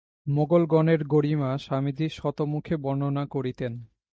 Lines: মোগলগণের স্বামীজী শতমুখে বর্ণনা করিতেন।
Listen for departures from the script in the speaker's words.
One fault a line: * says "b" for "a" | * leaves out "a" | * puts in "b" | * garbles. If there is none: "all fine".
* puts in "গরিমা"